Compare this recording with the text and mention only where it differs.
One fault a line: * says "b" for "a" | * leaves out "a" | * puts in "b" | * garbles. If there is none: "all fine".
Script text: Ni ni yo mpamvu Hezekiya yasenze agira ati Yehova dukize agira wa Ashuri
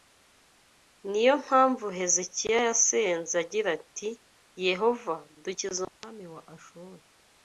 * leaves out "ni"
* says "umwami" for "agira"